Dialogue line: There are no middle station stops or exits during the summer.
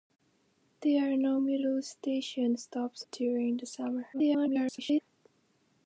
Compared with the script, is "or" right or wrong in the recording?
wrong